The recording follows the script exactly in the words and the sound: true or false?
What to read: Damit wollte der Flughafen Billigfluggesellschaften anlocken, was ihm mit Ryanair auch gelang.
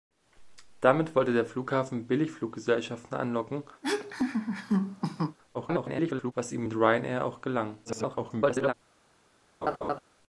false